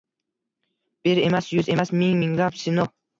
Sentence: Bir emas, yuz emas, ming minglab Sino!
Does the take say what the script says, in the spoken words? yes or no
yes